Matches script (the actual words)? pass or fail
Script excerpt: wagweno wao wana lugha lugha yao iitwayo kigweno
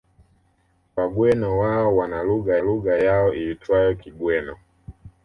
pass